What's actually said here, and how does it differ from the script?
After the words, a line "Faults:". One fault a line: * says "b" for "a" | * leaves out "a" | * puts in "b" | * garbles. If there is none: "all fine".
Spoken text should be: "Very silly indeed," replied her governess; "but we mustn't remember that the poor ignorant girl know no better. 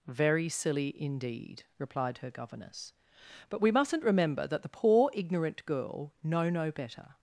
"Very silly indeed," replied her governess; "but we mustn't remember that the poor ignorant girl know no better.
Faults:
all fine